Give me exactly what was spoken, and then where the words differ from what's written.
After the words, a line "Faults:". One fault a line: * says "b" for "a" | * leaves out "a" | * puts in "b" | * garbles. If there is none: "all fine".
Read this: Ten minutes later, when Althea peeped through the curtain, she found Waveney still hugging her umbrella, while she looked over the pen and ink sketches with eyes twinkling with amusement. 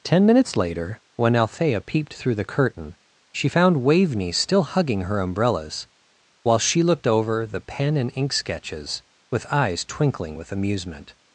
Ten minutes later, when Althea peeped through the curtain, she found Waveney still hugging her umbrellas, while she looked over the pen and ink sketches with eyes twinkling with amusement.
Faults:
* says "umbrellas" for "umbrella"